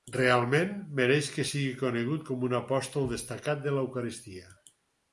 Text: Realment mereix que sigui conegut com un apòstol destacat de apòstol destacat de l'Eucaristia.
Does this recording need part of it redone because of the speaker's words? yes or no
yes